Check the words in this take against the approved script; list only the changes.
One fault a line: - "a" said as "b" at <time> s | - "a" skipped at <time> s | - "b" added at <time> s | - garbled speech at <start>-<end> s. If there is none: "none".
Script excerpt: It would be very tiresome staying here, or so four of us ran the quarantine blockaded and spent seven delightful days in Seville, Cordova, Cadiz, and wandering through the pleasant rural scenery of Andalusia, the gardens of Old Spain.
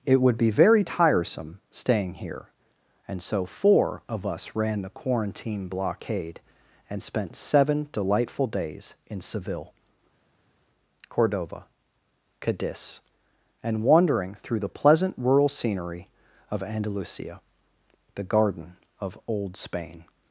- "or" said as "and" at 3.1 s
- "blockaded" said as "blockade" at 5.7 s
- "gardens" said as "garden" at 18.2 s